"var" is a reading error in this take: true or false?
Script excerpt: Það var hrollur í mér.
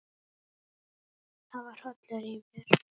false